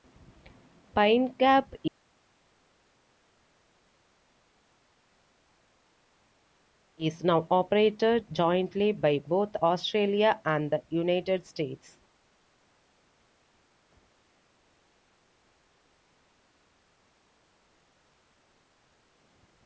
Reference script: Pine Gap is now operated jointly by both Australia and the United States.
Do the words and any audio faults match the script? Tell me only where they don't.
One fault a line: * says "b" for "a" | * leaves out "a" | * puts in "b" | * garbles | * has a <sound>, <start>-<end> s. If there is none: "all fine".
all fine